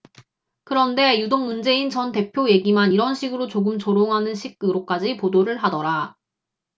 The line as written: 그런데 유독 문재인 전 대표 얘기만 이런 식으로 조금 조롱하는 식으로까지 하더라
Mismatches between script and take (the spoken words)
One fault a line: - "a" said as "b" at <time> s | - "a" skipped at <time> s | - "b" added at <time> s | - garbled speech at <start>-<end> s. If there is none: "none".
- "보도를" added at 5.1 s